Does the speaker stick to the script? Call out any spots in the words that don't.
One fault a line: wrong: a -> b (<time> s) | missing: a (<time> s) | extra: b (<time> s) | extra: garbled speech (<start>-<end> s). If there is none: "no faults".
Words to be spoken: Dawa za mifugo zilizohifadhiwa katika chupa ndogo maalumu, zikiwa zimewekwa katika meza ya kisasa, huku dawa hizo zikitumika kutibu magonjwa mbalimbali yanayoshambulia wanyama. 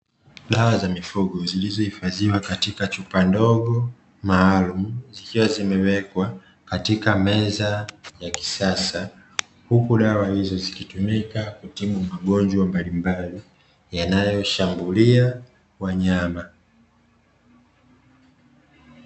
no faults